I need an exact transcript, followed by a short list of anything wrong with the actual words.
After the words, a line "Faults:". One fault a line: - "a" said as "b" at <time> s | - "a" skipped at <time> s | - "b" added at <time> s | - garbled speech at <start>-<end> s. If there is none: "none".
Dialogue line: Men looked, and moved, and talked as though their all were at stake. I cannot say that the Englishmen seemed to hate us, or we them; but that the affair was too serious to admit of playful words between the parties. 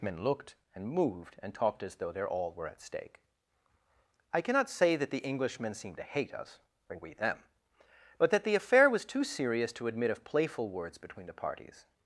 Men looked, and moved, and talked as though their all were at stake. I cannot say that the Englishmen seemed to hate us, or we them; but that the affair was too serious to admit of playful words between the parties.
Faults:
none